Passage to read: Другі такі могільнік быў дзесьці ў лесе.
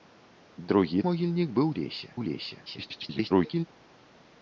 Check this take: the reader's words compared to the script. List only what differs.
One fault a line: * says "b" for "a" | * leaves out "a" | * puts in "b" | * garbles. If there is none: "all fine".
* leaves out "такі"
* says "лесе" for "дзесьці"
* garbles